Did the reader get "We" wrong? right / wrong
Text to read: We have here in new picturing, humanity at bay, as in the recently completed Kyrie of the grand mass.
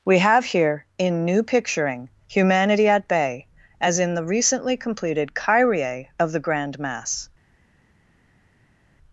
right